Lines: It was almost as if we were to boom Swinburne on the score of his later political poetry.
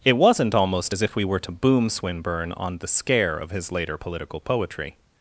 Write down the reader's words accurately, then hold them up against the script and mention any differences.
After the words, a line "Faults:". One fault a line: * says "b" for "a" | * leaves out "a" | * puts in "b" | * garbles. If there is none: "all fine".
It wasn't almost as if we were to boom Swinburne on the scare of his later political poetry.
Faults:
* says "wasn't" for "was"
* says "scare" for "score"